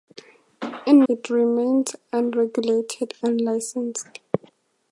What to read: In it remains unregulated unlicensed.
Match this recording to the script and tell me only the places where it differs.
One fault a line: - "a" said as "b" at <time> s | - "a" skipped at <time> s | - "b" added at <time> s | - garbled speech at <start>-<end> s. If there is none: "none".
none